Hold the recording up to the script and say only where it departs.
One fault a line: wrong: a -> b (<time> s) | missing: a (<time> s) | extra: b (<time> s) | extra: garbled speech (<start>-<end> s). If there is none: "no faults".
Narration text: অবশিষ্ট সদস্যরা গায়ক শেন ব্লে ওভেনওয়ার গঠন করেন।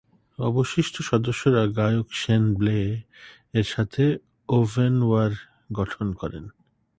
extra: এর সাথে (3.5 s)